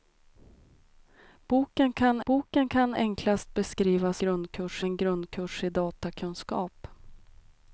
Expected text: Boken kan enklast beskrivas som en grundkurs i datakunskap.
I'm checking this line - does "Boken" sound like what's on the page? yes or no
yes